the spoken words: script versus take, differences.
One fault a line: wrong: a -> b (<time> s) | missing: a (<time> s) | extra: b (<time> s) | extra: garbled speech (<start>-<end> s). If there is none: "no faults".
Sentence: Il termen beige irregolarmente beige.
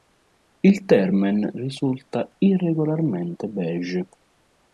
wrong: beige -> risulta (1.5 s)